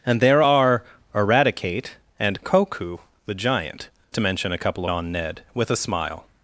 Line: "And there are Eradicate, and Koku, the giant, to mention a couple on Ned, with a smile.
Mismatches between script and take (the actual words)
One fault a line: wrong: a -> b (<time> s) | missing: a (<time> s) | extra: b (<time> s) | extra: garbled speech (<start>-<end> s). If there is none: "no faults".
no faults